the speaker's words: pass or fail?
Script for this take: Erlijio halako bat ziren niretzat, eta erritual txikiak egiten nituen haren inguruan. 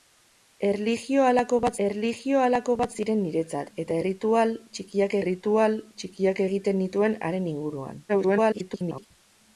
fail